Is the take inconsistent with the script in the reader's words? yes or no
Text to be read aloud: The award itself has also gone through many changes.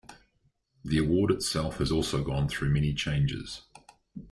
no